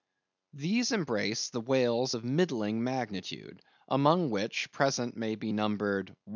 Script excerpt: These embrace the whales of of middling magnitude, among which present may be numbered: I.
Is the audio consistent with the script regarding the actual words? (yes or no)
no